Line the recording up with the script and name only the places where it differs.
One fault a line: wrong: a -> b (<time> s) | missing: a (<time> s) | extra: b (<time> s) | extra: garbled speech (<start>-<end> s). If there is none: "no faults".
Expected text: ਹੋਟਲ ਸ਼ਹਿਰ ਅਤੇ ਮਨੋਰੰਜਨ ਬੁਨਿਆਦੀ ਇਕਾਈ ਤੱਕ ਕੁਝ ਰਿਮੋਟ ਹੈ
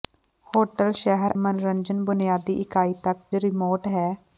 missing: ਅਤੇ (1.3 s)
missing: ਕੁਝ (3.2 s)